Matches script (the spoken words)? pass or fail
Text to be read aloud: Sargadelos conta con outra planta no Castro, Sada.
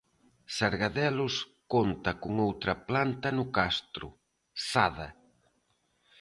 pass